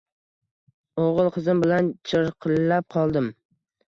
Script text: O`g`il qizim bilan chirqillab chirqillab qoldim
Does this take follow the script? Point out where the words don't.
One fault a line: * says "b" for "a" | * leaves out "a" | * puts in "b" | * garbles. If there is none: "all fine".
* leaves out "chirqillab"